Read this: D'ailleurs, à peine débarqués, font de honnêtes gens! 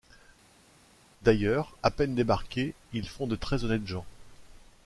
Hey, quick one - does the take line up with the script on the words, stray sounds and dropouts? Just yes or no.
no